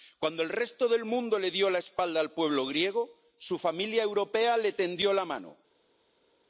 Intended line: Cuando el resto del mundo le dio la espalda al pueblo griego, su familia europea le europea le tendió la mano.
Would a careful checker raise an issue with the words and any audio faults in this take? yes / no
yes